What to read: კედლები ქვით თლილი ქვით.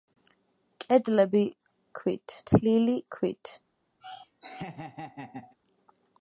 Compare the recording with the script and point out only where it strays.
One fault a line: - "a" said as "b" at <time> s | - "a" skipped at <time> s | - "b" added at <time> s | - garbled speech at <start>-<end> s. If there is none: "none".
none